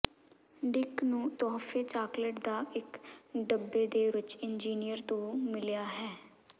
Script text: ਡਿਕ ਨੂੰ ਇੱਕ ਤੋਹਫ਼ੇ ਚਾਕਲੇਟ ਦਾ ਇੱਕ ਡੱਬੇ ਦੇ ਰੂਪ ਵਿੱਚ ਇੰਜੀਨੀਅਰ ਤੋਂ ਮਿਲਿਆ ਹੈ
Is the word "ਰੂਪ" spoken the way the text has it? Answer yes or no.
no